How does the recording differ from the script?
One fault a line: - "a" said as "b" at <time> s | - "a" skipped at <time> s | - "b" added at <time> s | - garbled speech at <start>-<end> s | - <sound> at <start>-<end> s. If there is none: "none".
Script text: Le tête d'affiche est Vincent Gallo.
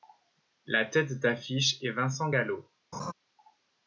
- "Le" said as "La" at 0.7 s
- laugh at 2.9-3.1 s